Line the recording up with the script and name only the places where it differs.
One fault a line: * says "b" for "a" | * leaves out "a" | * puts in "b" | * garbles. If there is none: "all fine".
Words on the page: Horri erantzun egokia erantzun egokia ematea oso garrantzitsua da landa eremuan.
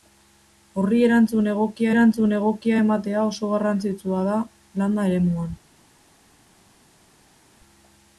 all fine